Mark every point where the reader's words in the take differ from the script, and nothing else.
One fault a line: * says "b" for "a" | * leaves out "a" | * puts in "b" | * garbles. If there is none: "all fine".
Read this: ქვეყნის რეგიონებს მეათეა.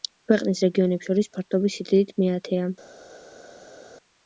* puts in "შორის ფართობის სიდიდით"